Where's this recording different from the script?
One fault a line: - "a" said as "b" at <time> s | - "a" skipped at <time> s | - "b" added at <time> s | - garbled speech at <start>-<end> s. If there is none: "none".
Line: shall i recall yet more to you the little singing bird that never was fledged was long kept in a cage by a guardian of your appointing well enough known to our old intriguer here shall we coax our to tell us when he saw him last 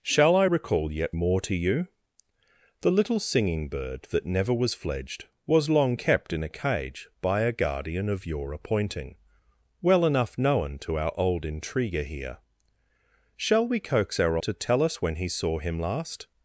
none